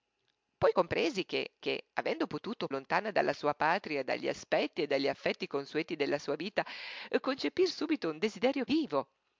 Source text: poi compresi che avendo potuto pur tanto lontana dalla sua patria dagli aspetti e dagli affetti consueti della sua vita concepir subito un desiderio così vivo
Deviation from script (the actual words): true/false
true